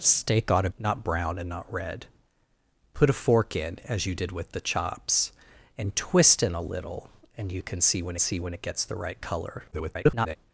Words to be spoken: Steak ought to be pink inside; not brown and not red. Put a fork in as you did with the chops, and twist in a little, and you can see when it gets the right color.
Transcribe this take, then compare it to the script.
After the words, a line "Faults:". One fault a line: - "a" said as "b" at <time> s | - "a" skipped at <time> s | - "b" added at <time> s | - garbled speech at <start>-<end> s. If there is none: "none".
Steak ought to; not brown and not red. Put a fork in as you did with the chops, and twist in a little, and you can see when see when it gets the right color. [garbled]
Faults:
- "be pink inside" skipped at 0.7 s
- "see when" added at 8.2 s
- garbled speech at 9.7-10.4 s